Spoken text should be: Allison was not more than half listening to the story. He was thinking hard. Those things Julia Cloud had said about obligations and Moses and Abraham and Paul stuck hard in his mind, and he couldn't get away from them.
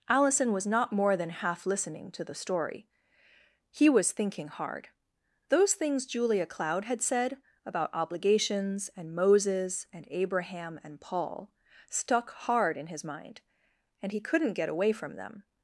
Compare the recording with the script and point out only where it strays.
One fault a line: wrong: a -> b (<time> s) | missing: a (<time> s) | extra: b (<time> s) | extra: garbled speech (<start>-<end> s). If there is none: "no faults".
no faults